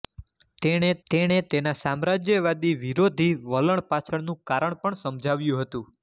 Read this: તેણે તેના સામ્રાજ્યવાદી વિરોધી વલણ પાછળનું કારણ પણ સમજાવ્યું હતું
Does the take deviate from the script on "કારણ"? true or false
false